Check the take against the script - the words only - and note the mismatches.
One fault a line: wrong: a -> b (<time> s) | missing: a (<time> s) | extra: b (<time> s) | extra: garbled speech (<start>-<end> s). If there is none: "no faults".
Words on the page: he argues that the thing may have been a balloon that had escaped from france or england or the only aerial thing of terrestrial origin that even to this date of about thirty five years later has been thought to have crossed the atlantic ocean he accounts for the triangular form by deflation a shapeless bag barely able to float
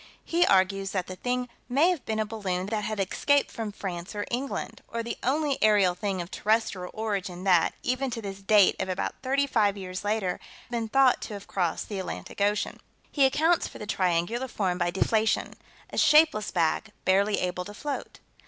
missing: has (10.4 s)